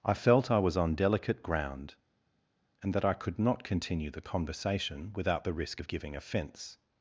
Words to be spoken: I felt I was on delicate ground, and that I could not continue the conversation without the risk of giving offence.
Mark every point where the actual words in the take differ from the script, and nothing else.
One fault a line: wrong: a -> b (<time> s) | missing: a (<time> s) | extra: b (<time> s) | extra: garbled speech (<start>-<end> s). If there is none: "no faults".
no faults